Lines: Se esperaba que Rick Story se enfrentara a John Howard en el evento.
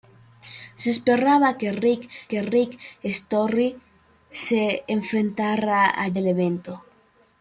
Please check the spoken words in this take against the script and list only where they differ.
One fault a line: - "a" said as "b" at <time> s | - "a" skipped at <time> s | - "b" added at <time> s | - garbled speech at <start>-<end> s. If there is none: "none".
- "que Rick" added at 2.3 s
- "John Howard en" skipped at 6.1 s